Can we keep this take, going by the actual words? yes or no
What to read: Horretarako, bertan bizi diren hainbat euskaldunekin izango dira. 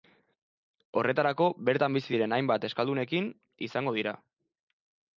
yes